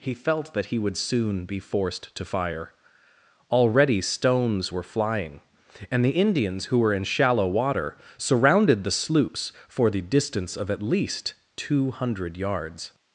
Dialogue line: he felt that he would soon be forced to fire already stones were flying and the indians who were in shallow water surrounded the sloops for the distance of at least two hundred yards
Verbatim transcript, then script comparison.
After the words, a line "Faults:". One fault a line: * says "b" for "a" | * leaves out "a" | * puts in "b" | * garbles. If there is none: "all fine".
he felt that he would soon be forced to fire already stones were flying and the indians who were in shallow water surrounded the sloops for the distance of at least two hundred yards
Faults:
all fine